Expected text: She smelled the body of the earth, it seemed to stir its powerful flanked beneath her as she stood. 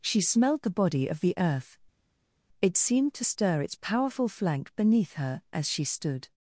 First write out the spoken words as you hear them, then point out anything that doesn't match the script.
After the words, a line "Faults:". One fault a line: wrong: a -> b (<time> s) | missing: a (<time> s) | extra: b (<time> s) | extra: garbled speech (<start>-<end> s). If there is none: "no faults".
She smelled the body of the earth, it seemed to stir its powerful flank beneath her as she stood.
Faults:
wrong: flanked -> flank (4.3 s)